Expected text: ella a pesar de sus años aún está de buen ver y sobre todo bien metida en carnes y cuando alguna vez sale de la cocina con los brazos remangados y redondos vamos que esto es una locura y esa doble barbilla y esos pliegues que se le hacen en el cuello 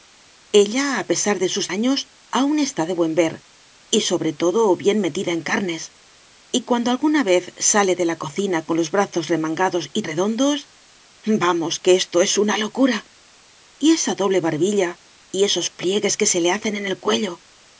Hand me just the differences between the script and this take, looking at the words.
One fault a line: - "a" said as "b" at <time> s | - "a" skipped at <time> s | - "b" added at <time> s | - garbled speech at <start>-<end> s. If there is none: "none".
none